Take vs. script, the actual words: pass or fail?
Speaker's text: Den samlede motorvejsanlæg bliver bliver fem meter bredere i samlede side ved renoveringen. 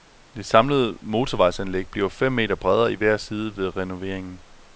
fail